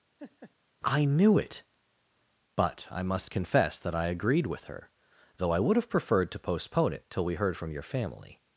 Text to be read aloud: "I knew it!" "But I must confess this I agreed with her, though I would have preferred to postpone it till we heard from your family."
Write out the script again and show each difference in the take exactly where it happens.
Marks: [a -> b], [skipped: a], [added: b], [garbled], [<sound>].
[laugh] "I knew it!" "But I must confess [this -> that] I agreed with her, though I would have preferred to postpone it till we heard from your family."